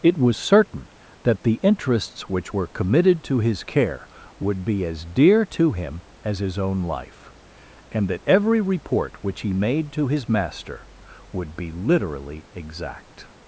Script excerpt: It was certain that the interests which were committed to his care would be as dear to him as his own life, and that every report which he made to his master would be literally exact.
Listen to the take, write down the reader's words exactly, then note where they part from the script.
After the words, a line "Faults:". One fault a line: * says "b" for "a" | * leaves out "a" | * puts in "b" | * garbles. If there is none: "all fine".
It was certain that the interests which were committed to his care would be as dear to him as his own life, and that every report which he made to his master would be literally exact.
Faults:
all fine